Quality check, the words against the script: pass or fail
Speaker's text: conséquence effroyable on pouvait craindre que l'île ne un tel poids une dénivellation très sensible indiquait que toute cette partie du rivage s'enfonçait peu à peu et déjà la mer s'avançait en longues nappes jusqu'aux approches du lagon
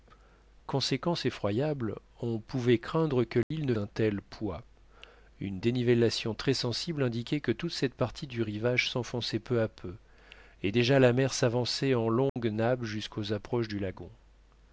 pass